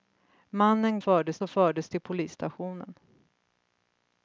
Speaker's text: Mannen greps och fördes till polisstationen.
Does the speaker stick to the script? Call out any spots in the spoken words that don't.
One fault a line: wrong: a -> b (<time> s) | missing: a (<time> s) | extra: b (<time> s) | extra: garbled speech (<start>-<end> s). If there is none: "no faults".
wrong: greps -> fördes (1.0 s)